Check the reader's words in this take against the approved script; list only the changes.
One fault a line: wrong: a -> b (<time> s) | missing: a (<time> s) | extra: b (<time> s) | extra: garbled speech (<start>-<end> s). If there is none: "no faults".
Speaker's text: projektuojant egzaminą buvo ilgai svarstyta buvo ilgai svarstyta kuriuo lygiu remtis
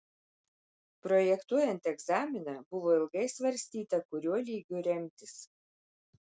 missing: buvo ilgai svarstyta (4.0 s)